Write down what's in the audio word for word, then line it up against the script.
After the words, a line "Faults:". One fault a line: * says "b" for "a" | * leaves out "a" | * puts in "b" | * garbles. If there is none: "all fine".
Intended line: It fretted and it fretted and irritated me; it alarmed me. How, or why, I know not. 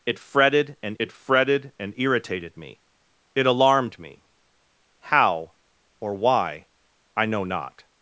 It fretted and it fretted and irritated me; it alarmed me. How, or why, I know not.
Faults:
all fine